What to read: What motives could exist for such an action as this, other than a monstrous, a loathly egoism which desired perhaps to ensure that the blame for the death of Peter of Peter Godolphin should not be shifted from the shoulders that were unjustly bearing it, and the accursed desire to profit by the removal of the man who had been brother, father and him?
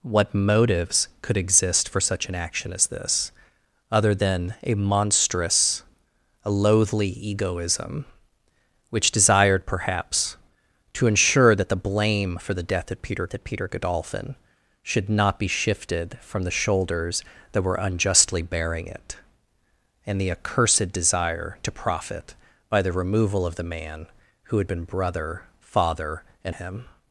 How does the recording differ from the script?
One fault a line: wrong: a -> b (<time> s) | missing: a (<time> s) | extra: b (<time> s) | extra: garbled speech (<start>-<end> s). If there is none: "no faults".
no faults